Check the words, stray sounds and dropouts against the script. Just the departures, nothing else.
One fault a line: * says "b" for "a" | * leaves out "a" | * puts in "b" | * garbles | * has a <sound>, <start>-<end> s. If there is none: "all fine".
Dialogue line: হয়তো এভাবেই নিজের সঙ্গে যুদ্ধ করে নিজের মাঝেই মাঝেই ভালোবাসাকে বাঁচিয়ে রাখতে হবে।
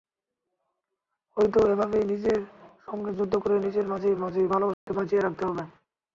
* has a dropout, 4.7-4.9 s